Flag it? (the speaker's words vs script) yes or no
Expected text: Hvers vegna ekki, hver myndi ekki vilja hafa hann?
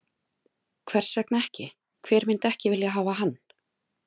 no